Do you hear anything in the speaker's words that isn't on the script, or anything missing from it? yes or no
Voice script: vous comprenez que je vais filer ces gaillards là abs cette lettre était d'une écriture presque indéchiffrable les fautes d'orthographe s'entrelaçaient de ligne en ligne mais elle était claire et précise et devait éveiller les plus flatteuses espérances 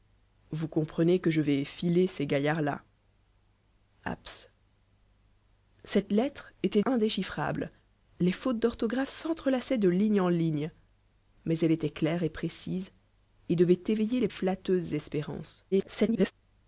yes